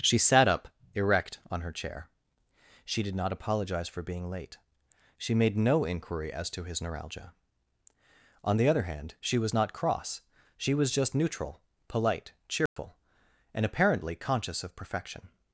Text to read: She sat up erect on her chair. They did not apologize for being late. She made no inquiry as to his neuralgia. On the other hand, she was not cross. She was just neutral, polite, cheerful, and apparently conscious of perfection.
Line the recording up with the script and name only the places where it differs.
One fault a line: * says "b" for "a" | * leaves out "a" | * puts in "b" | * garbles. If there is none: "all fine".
* says "She" for "They"